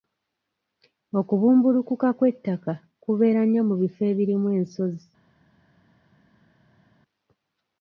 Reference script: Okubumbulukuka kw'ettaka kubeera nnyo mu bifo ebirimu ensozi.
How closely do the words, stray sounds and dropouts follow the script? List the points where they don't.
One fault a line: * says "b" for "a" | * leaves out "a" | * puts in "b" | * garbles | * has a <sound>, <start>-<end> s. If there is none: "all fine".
all fine